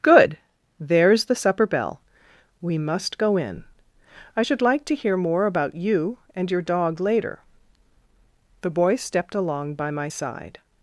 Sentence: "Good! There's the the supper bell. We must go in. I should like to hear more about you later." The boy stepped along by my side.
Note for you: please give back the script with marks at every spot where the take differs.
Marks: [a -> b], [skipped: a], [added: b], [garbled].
"Good! There's the [skipped: the] supper bell. We must go in. I should like to hear more about you [added: and your dog] later." The boy stepped along by my side.